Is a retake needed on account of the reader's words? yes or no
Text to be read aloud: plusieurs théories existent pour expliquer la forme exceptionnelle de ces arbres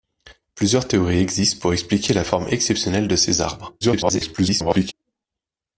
yes